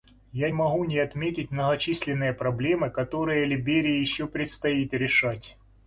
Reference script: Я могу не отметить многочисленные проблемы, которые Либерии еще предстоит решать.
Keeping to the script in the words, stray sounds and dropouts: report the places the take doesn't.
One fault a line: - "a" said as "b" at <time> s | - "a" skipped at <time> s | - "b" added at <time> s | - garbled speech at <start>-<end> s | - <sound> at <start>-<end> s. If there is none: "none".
none